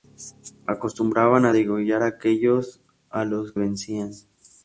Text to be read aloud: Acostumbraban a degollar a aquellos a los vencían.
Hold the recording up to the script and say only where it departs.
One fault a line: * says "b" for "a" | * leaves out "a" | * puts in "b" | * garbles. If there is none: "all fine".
all fine